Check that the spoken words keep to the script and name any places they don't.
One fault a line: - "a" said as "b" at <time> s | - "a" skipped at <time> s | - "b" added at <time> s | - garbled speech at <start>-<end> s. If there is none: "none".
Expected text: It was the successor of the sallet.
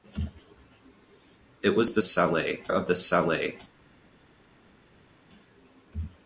- "successor" said as "sallet" at 2.0 s